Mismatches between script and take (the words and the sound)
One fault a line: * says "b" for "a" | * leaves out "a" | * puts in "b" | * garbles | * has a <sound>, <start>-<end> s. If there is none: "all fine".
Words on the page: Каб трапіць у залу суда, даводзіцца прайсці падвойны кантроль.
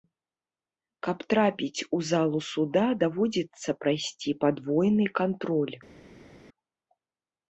all fine